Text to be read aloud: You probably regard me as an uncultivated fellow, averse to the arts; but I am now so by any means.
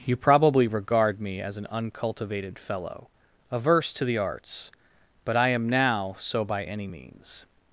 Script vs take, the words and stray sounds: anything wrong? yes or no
no